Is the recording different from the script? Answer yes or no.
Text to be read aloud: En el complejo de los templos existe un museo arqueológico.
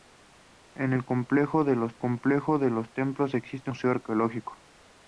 yes